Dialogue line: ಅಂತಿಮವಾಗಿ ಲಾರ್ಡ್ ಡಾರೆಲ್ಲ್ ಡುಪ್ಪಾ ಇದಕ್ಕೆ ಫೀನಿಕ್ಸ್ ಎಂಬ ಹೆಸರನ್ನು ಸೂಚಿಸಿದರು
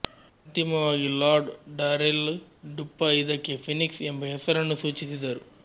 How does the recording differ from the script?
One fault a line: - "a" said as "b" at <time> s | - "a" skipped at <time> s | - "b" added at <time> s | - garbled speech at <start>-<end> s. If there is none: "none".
none